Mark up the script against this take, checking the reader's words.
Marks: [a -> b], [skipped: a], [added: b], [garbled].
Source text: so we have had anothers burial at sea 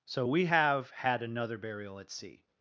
so we have had [anothers -> another] burial at sea